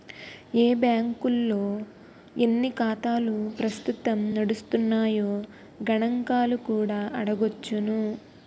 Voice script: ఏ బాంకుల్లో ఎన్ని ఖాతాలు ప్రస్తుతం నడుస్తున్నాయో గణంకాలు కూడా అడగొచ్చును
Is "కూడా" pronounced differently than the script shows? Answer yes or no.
no